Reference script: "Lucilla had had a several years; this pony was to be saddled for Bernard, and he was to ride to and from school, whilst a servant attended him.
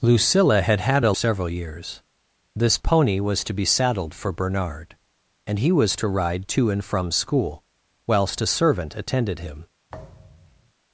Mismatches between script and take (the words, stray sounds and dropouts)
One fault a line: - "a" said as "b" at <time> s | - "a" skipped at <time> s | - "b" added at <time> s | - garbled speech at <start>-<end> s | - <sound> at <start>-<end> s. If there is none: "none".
- thud at 9.9-10.7 s